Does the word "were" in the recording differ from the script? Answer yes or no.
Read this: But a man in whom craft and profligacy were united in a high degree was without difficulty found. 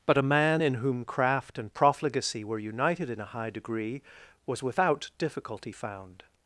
no